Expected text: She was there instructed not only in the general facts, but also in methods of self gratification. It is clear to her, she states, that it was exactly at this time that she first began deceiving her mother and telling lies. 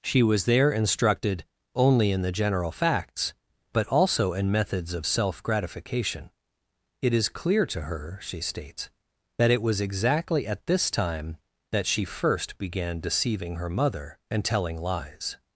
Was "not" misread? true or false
true